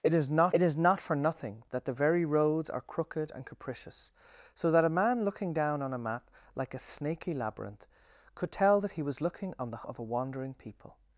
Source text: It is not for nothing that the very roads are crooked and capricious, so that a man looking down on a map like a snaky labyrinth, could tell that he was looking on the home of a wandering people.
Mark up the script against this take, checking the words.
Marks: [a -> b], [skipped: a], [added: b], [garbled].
It is not [added: it is not] for nothing that the very roads are crooked and capricious, so that a man looking down on a map like a snaky labyrinth, could tell that he was looking on the [skipped: home] of a wandering people.